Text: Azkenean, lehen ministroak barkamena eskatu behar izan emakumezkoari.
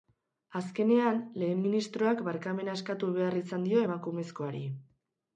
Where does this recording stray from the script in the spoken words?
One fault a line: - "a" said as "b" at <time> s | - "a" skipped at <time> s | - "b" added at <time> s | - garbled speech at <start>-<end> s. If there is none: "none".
- "dio" added at 3.7 s